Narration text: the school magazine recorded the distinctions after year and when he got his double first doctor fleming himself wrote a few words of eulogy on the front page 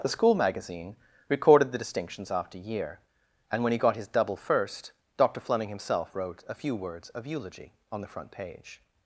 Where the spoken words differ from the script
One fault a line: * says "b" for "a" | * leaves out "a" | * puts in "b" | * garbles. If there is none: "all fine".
all fine